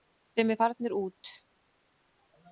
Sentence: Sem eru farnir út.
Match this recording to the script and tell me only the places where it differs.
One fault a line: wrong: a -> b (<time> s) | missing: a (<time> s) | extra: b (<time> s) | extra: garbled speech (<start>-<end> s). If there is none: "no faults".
no faults